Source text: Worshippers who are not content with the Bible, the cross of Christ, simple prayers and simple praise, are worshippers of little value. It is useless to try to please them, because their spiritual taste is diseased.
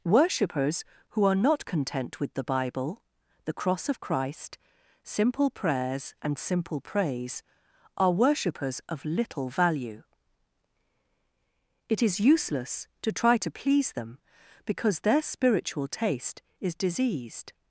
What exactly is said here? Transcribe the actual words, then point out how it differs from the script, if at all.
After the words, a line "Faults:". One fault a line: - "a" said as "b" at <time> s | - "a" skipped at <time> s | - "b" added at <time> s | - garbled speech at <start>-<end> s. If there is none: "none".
Worshippers who are not content with the Bible, the cross of Christ, simple prayers and simple praise, are worshippers of little value. It is useless to try to please them, because their spiritual taste is diseased.
Faults:
none